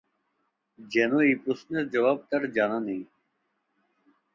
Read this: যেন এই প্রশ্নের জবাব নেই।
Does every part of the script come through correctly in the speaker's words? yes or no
no